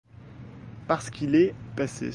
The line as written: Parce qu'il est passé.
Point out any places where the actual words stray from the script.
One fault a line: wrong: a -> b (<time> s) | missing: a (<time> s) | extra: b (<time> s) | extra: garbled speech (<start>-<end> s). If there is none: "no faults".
no faults